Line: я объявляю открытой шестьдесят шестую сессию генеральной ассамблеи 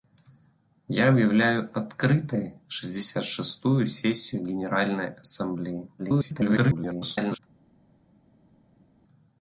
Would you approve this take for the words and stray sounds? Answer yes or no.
no